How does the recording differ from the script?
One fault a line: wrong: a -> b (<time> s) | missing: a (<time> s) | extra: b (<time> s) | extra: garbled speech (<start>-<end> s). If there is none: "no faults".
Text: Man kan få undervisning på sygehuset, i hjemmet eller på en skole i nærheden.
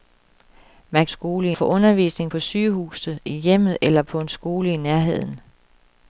wrong: kan -> skole (1.1 s)